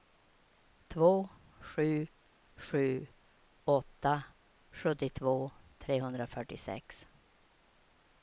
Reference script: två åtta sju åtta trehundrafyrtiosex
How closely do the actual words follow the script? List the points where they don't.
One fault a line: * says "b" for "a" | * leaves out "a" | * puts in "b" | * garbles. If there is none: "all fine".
* says "sju" for "åtta"
* puts in "sjuttiotvå"